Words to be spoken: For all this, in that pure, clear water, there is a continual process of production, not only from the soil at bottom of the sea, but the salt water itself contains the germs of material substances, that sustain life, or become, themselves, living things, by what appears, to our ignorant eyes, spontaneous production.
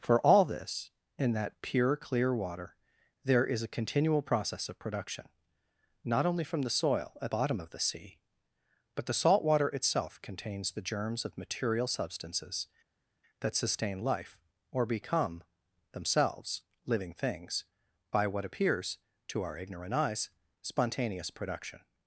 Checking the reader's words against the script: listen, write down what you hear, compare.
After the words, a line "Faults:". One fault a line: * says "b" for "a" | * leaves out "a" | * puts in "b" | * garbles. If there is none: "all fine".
For all this, in that pure, clear water, there is a continual process of production, not only from the soil at bottom of the sea, but the salt water itself contains the germs of material substances, that sustain life, or become, themselves, living things, by what appears, to our ignorant eyes, spontaneous production.
Faults:
all fine